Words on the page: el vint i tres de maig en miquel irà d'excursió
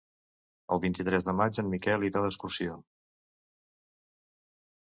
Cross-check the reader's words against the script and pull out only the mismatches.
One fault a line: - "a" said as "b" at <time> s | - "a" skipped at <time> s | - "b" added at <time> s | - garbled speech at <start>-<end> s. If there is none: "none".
none